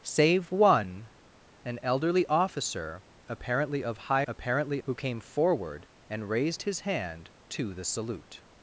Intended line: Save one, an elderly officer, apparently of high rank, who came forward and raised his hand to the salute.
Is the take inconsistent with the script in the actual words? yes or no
yes